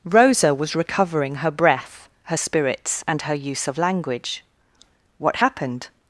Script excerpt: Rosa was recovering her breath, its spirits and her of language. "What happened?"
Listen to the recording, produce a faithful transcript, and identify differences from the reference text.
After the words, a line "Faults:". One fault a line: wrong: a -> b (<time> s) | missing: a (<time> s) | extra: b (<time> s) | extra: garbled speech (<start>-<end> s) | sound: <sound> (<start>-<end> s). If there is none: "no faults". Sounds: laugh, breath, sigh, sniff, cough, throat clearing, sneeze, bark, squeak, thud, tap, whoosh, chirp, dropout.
Rosa was recovering her breath, her spirits and her use of language. "What happened?"
Faults:
wrong: its -> her (2.2 s)
extra: use (3.3 s)